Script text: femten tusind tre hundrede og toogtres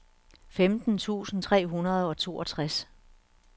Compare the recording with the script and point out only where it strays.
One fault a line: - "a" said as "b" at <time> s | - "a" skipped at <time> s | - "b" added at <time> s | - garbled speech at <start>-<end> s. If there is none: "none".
none